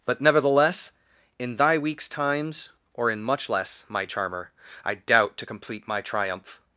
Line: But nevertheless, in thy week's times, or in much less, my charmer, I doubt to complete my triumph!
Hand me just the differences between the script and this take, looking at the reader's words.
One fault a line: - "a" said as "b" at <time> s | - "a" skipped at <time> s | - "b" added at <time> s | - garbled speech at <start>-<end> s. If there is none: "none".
none